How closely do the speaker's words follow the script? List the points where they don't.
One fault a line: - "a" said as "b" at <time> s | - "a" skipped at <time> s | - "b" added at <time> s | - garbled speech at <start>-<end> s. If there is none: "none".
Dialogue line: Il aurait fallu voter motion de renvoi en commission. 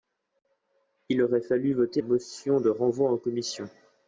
none